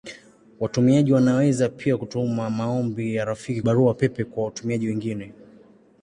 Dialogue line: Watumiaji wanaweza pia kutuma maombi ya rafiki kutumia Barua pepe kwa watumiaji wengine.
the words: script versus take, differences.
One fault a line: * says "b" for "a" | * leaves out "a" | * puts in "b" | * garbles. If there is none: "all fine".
* leaves out "kutumia"